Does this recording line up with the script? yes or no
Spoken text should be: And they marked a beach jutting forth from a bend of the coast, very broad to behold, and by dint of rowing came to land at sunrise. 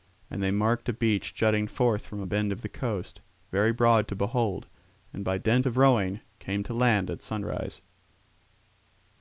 yes